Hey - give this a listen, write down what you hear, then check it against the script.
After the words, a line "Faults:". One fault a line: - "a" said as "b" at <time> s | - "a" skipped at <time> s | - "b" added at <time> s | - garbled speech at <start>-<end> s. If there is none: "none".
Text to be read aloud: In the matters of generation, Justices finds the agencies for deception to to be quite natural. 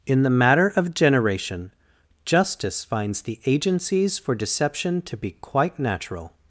In the matter of generation, Justice finds the agencies for deception to be quite natural.
Faults:
- "matters" said as "matter" at 0.3 s
- "Justices" said as "Justice" at 2.2 s
- "to" skipped at 5.2 s